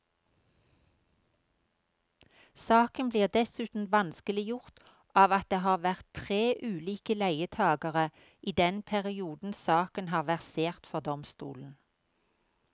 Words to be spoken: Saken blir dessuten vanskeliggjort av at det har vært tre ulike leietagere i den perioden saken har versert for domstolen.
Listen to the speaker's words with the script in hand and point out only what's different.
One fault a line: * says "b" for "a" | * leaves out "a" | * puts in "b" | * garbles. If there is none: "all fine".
all fine